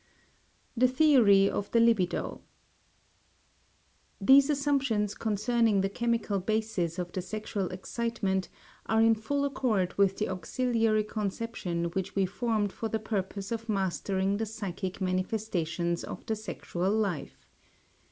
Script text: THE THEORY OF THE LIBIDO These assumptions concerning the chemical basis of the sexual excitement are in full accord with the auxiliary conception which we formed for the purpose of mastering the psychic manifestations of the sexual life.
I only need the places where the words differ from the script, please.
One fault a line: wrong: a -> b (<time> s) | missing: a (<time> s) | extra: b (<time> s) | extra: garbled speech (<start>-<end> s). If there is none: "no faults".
no faults